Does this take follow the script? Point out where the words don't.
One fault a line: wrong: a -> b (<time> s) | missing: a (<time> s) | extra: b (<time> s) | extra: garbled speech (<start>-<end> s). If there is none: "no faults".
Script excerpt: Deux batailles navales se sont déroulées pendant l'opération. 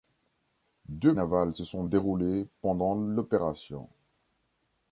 missing: batailles (1.1 s)